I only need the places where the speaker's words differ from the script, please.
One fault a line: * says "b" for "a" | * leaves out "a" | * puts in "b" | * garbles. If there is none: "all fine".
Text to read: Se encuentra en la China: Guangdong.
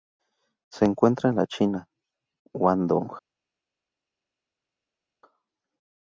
all fine